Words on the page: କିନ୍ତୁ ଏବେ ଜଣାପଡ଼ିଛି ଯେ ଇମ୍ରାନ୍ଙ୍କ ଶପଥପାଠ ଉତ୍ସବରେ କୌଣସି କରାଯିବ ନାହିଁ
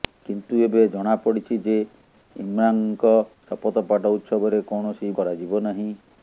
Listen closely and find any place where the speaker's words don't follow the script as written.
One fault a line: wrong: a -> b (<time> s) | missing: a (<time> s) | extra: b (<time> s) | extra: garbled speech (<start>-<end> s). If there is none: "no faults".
no faults